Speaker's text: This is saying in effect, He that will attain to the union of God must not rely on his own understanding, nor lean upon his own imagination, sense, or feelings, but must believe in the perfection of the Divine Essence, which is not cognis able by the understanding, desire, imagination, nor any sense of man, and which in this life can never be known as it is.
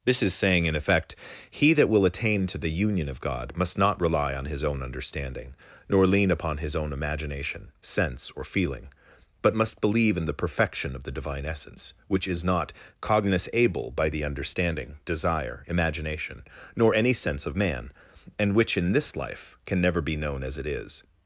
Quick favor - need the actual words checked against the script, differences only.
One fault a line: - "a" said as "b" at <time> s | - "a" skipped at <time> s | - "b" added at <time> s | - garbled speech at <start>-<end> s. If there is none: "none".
- "feelings" said as "feeling" at 8.5 s